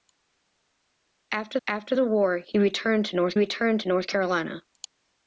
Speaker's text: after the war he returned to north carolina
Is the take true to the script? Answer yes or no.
no